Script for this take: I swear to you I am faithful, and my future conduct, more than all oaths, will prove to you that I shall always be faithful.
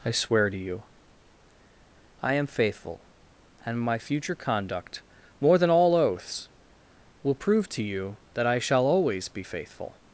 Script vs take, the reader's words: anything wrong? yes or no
no